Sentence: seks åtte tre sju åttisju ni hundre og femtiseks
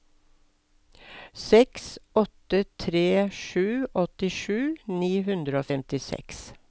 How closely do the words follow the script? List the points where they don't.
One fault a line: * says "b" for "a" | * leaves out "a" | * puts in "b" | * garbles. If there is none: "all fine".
all fine